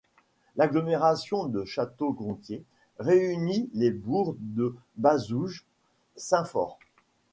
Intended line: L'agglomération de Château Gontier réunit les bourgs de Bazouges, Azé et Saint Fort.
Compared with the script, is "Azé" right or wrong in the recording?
wrong